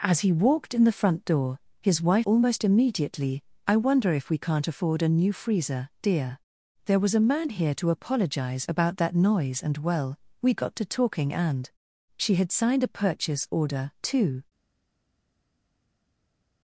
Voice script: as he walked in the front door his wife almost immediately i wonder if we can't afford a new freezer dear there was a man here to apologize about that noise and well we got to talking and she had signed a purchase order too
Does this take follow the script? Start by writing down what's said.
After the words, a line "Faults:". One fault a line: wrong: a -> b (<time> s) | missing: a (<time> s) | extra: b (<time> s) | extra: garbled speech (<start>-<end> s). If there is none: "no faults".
as he walked in the front door his wife almost immediately i wonder if we can't afford a new freezer dear there was a man here to apologize about that noise and well we got to talking and she had signed a purchase order too
Faults:
no faults